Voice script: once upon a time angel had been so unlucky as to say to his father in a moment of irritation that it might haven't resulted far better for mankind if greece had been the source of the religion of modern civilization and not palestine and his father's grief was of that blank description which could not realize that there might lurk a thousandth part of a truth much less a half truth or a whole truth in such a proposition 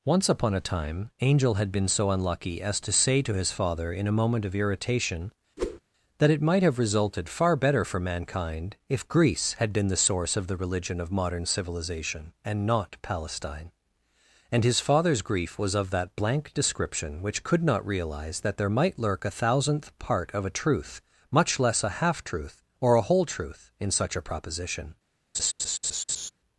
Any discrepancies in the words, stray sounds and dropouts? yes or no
yes